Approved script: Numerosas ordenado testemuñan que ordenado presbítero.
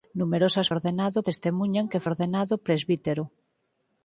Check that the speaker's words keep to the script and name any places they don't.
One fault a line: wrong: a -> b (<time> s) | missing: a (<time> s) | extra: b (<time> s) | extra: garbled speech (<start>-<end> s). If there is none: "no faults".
no faults